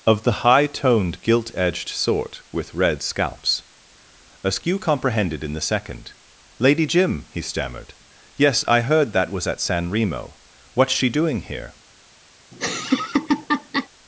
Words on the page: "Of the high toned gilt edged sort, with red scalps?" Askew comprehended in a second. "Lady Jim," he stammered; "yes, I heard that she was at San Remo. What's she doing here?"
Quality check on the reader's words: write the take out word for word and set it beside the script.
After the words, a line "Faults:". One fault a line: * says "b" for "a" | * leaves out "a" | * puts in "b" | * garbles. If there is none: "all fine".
"Of the high toned gilt edged sort, with red scalps?" Askew comprehended in the second. "Lady Jim," he stammered; "yes, I heard that was at San Remo. What's she doing here?"
Faults:
* says "the" for "a"
* leaves out "she"